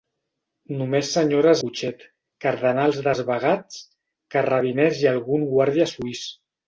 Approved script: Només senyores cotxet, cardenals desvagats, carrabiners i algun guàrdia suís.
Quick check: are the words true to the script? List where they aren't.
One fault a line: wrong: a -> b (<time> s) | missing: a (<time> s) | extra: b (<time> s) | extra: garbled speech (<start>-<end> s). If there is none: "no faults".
no faults